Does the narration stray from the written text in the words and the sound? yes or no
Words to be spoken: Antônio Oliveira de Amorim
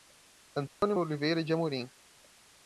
yes